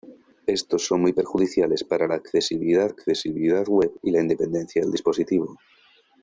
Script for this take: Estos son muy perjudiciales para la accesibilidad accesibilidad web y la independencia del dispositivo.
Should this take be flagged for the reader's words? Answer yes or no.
no